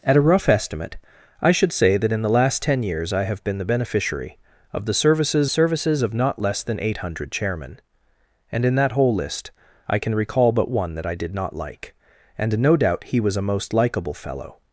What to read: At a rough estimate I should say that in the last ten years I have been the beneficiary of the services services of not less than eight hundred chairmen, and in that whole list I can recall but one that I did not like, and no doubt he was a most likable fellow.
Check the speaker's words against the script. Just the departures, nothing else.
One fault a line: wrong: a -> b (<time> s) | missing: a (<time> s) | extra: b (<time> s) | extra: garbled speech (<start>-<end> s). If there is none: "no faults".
no faults